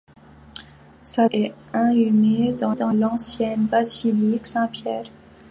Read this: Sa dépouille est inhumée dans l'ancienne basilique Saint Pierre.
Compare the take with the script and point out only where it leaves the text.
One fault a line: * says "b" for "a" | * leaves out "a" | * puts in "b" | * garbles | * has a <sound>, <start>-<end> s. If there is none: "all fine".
* leaves out "dépouille"
* puts in "dans"